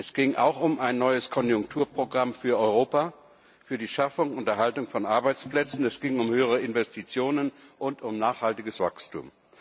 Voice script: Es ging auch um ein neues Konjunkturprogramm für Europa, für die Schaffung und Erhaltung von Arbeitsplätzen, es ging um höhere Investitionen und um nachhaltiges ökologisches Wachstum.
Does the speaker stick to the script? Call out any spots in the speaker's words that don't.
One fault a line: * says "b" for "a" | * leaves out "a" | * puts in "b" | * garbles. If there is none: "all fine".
* leaves out "ökologisches"